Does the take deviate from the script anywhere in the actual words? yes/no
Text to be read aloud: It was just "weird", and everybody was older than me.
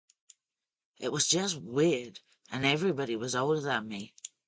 no